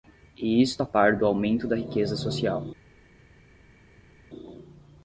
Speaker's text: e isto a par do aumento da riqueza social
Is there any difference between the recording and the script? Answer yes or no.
no